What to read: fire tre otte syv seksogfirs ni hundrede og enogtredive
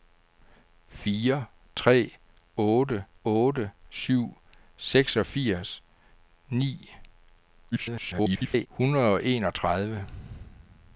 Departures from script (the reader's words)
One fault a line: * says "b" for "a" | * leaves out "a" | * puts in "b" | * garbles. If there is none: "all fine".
* puts in "otte"
* garbles